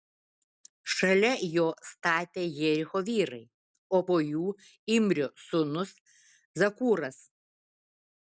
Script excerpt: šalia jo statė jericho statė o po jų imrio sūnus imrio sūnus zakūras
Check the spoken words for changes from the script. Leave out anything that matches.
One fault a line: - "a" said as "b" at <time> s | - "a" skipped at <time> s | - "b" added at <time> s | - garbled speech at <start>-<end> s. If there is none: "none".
- "statė" said as "vyrai" at 3.1 s
- "imrio sūnus" skipped at 5.9 s